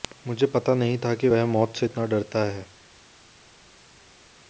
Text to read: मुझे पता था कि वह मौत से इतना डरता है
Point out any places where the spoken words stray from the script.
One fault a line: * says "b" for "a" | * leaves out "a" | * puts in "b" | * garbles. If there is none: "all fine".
* puts in "नहीं"